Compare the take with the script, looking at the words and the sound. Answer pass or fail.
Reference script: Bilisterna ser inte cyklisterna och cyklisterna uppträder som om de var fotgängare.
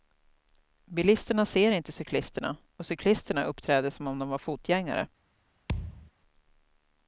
fail